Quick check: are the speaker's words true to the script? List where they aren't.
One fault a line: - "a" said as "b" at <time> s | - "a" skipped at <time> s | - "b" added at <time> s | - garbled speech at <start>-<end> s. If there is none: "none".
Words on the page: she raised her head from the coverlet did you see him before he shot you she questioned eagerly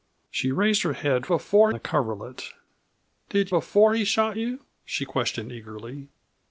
- "from" said as "before" at 1.3 s
- "you see him" skipped at 3.5 s